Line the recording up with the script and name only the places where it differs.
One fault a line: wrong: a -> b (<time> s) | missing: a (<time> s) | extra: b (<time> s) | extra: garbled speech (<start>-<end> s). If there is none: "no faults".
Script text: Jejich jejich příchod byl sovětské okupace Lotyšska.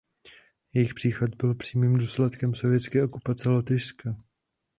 missing: jejich (0.9 s)
extra: přímým důsledkem (1.5 s)